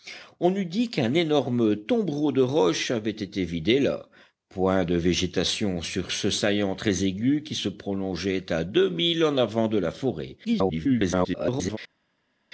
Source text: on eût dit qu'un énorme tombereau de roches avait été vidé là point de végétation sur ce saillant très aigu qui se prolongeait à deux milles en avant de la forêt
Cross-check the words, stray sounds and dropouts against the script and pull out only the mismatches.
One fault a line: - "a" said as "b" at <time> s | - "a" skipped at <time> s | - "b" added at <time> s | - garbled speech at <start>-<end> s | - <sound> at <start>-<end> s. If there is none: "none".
- garbled speech at 10.4-11.8 s